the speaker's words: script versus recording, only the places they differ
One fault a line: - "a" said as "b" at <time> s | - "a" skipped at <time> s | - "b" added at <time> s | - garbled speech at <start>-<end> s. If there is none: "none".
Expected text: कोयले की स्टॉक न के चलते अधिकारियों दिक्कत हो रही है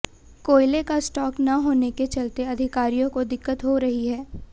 - "की" said as "का" at 0.8 s
- "होने" added at 1.6 s
- "को" added at 3.1 s